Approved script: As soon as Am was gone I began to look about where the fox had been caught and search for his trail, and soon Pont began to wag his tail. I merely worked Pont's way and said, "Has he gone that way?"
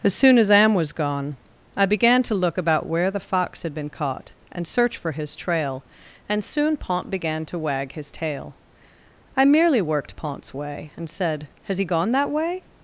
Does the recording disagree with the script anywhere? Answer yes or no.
no